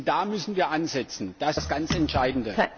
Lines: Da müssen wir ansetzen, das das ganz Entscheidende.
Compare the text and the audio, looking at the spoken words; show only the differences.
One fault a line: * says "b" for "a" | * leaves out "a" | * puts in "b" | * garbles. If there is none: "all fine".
all fine